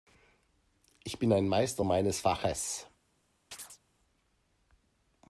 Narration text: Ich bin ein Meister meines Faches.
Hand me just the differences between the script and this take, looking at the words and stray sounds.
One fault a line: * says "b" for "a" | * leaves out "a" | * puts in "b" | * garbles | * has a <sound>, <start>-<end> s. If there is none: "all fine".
* has a chirp, 3.5-3.8 s